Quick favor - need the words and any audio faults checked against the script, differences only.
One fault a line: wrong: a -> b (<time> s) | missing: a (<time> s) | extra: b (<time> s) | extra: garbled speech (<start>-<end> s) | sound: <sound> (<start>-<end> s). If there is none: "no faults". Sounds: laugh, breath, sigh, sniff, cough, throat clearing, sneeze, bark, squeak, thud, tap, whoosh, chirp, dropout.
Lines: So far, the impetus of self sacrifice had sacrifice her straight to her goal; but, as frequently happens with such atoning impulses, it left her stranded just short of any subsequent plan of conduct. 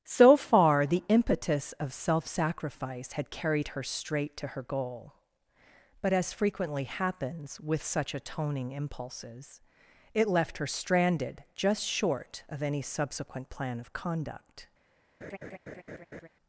wrong: sacrifice -> carried (3.3 s)
sound: laugh (15.2-16.3 s)